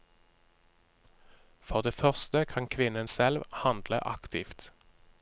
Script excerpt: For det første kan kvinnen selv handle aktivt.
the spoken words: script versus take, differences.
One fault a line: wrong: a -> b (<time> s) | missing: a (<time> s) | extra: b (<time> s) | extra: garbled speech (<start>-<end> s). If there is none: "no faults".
no faults